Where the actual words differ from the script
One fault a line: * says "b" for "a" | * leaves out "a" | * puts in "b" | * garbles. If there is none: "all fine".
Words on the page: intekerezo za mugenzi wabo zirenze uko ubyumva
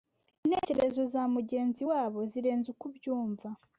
all fine